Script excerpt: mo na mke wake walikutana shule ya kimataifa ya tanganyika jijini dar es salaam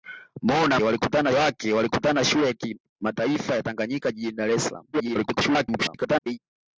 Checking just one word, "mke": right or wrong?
wrong